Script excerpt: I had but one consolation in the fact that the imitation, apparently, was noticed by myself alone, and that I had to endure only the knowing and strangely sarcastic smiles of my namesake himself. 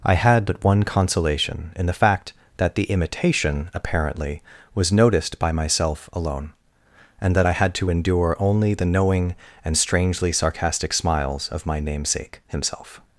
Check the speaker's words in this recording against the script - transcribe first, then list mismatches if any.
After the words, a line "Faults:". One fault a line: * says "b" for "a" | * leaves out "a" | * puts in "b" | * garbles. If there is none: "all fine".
I had but one consolation in the fact that the imitation, apparently, was noticed by myself alone, and that I had to endure only the knowing and strangely sarcastic smiles of my namesake himself.
Faults:
all fine